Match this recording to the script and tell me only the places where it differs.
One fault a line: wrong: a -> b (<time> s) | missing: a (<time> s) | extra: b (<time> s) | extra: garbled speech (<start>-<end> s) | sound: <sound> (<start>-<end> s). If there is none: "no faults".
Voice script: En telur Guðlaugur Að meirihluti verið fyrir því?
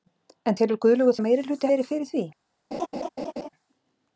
sound: laugh (2.7-3.5 s)